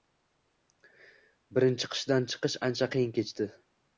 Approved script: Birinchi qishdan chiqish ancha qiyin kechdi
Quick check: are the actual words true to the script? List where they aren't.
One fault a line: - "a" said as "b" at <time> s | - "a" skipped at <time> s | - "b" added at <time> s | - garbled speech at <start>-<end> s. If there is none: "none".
none